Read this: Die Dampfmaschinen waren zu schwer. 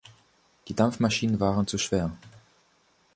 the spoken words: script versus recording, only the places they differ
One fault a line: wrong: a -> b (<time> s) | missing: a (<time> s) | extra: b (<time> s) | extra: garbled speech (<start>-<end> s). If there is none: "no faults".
no faults